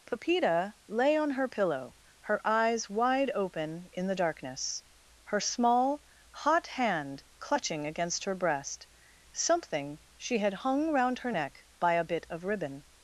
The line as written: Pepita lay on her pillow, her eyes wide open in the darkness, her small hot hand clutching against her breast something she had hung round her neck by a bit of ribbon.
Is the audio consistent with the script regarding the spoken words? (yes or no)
yes